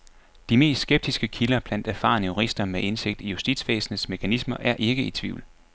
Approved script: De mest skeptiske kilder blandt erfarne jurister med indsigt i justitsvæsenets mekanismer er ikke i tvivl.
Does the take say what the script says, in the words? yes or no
yes